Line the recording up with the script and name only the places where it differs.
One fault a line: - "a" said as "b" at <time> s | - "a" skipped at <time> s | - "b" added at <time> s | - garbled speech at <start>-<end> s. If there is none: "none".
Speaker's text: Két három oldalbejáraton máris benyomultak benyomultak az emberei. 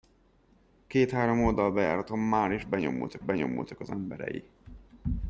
none